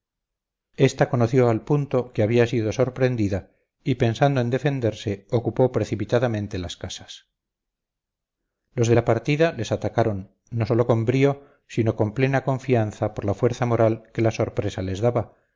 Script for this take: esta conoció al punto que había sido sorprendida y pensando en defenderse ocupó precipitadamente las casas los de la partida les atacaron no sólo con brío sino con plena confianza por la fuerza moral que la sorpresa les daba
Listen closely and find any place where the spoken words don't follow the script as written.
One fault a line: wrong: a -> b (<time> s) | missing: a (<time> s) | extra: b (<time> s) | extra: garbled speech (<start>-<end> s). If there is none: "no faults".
no faults